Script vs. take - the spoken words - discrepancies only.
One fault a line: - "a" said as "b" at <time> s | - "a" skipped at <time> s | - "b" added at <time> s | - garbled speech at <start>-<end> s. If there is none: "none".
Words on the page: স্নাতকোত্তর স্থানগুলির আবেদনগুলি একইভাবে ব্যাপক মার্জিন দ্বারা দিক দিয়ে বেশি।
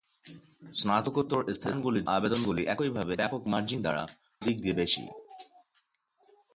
none